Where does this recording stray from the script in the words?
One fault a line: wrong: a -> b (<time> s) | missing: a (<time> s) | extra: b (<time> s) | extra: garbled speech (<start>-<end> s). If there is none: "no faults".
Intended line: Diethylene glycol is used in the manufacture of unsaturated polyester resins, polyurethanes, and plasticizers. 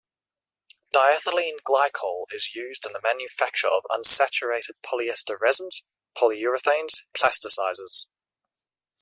missing: and (7.0 s)